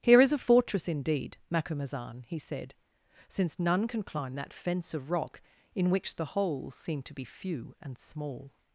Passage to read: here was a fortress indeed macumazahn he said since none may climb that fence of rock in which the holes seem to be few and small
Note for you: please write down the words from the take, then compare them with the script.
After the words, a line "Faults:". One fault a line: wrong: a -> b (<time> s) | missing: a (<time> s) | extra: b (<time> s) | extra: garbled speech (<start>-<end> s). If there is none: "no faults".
here is a fortress indeed macumazahn he said since none can climb that fence of rock in which the holes seem to be few and small
Faults:
wrong: was -> is (0.2 s)
wrong: may -> can (3.9 s)